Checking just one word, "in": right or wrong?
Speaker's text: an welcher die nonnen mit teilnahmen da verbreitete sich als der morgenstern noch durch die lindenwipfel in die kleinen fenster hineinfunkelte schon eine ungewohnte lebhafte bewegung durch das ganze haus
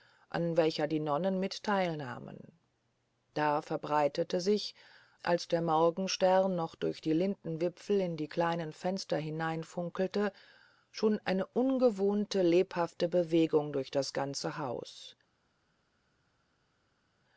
right